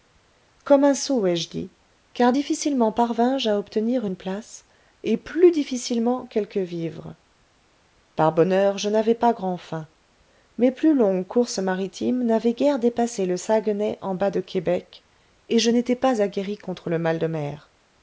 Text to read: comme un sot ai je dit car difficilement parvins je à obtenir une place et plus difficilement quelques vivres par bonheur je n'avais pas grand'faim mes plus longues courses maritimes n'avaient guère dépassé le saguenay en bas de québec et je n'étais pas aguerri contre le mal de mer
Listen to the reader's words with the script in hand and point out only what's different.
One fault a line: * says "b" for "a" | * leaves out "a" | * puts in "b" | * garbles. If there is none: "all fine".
all fine